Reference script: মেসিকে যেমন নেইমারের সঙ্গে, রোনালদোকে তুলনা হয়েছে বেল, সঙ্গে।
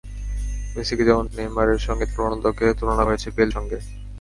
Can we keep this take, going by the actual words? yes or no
yes